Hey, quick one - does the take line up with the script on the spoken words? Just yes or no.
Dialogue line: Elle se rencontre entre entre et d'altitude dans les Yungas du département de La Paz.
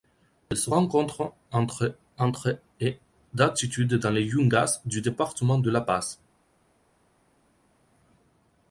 yes